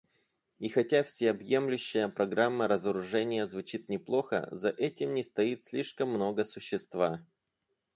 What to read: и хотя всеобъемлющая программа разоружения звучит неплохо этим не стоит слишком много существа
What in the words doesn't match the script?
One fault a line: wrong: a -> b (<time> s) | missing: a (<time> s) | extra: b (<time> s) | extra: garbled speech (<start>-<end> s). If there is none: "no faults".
extra: за (4.5 s)